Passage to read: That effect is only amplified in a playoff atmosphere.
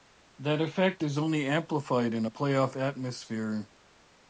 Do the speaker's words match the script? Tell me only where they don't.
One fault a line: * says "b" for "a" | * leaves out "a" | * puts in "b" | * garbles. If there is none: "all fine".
all fine